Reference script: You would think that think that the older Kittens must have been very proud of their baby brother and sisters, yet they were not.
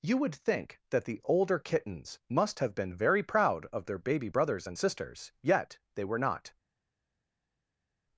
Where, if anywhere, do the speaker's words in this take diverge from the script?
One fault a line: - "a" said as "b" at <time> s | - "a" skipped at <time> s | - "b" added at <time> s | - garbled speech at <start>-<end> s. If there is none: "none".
- "think that" skipped at 1.1 s
- "brother" said as "brothers" at 4.3 s